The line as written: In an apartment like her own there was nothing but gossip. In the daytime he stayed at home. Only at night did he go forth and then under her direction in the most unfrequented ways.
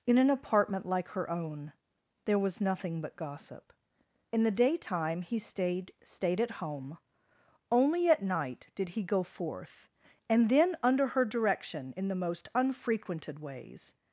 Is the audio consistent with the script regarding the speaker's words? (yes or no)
no